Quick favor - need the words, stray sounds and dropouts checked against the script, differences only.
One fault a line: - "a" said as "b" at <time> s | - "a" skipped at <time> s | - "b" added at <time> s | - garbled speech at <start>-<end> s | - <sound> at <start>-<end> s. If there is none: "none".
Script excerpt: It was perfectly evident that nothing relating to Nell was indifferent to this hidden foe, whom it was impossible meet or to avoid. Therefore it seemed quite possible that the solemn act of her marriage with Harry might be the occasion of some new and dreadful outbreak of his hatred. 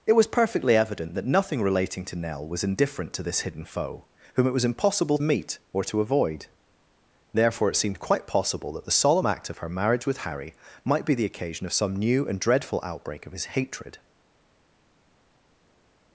none